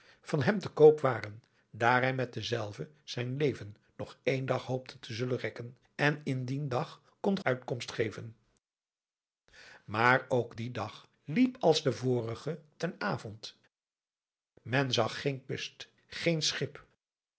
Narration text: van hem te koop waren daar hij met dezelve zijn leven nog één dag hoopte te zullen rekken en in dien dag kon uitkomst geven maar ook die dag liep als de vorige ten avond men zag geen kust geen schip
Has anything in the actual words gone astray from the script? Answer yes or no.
no